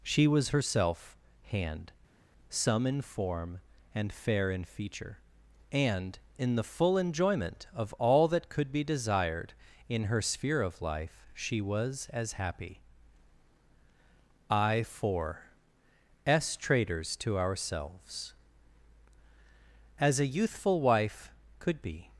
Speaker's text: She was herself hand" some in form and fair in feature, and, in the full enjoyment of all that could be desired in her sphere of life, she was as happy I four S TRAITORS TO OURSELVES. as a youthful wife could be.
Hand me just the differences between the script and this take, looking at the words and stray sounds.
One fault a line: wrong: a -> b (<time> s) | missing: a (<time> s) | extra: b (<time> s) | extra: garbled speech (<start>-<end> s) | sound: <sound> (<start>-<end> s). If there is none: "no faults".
no faults